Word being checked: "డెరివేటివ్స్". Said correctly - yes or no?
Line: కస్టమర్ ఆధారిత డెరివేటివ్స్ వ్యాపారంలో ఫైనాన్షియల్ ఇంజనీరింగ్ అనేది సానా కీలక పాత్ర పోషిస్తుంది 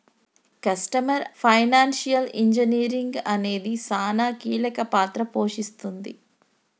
no